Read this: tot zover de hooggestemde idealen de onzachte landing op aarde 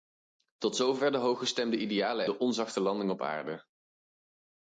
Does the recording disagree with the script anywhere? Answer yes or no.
no